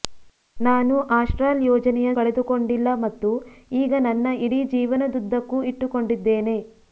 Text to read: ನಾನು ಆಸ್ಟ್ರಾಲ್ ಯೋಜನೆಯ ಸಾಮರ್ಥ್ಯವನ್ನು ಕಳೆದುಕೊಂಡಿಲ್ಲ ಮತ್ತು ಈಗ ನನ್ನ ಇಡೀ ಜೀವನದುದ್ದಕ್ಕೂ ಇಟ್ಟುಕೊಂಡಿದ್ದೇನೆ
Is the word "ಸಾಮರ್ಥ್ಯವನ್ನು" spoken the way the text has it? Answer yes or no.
no